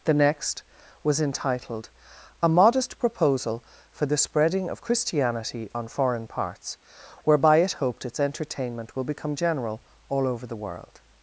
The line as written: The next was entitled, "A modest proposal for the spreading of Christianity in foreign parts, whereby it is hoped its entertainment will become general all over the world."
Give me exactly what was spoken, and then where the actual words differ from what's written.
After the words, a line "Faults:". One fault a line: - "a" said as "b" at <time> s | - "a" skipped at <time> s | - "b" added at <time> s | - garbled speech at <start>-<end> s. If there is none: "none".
The next was entitled, "A modest proposal for the spreading of Christianity on foreign parts, whereby it hoped its entertainment will become general all over the world."
Faults:
- "in" said as "on" at 5.7 s
- "is" skipped at 7.7 s